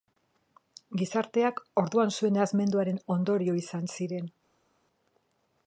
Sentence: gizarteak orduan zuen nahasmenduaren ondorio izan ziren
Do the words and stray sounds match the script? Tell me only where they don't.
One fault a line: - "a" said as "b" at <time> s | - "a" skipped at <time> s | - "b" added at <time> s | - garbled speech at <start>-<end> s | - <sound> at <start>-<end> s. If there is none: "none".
none